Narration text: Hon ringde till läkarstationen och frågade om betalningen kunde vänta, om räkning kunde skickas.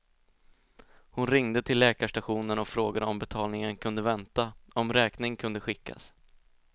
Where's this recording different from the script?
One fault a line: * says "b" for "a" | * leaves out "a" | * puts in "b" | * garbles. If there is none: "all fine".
all fine